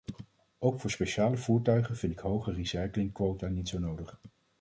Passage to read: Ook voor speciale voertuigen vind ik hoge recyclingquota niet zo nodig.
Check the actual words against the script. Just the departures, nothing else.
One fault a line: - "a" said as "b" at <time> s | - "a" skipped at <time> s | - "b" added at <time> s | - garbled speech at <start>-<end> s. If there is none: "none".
none